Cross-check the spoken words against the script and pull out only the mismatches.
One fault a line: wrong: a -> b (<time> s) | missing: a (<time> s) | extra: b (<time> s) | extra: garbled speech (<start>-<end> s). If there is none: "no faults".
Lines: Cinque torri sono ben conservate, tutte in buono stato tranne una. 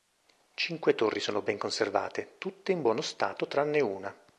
no faults